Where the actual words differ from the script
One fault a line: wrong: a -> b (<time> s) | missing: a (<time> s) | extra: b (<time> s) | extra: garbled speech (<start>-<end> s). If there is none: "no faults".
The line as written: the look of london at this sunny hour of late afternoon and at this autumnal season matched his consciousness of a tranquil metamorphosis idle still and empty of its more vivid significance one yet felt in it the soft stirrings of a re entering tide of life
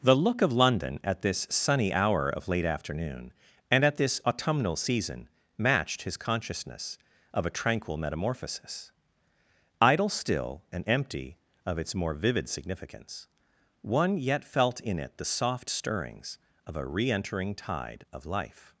no faults